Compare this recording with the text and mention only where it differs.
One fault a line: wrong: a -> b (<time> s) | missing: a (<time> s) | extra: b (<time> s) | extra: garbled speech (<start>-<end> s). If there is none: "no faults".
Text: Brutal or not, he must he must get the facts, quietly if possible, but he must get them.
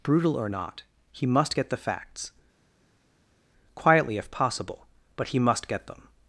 missing: he must (1.6 s)